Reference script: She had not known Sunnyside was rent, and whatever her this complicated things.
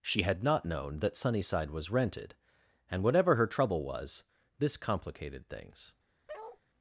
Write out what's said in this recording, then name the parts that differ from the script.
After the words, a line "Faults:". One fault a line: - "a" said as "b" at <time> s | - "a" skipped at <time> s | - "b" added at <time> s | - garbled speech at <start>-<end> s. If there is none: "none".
She had not known that Sunnyside was rented, and whatever her trouble was, this complicated things.
Faults:
- "that" added at 1.0 s
- "rent" said as "rented" at 1.9 s
- "trouble was" added at 3.5 s